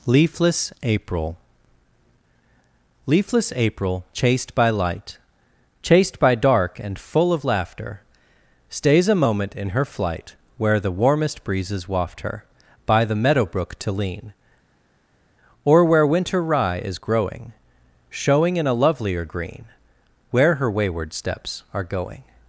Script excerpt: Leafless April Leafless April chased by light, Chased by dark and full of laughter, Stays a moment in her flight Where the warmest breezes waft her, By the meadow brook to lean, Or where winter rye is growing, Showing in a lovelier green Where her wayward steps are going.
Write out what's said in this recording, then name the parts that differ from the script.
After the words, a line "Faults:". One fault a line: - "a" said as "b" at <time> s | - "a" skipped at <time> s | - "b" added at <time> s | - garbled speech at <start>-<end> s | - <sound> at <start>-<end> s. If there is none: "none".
Leafless April Leafless April chased by light, Chased by dark and full of laughter, Stays a moment in her flight Where the warmest breezes waft her, By the meadow brook to lean, Or where winter rye is growing, Showing in a lovelier green Where her wayward steps are going.
Faults:
none